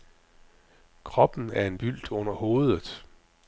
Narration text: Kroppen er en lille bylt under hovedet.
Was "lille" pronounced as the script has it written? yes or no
no